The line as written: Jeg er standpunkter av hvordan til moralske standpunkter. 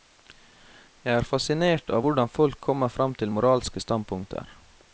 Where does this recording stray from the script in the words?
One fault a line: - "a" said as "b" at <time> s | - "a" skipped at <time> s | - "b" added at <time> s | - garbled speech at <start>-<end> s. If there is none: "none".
- "standpunkter" said as "fascinert" at 1.3 s
- "folk kommer frem" added at 2.4 s